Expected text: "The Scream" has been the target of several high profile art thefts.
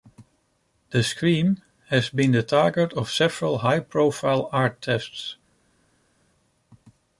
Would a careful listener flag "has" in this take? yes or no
no